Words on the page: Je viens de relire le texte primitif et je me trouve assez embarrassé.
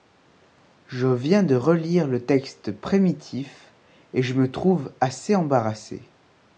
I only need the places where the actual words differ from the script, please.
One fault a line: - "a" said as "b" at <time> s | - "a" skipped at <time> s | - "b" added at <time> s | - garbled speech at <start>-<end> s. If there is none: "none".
none